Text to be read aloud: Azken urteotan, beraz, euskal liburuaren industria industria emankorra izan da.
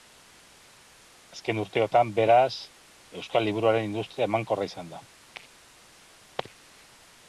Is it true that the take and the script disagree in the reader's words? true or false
true